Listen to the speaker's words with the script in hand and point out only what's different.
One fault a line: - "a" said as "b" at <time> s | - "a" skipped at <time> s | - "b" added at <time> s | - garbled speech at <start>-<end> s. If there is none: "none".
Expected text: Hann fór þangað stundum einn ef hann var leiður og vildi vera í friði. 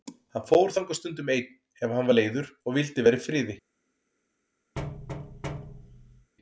none